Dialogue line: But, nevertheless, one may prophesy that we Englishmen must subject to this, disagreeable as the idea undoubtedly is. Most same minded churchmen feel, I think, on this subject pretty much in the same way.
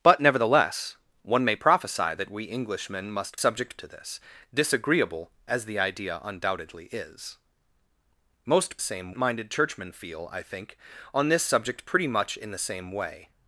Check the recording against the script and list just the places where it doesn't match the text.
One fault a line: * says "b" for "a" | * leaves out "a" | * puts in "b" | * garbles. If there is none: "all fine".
all fine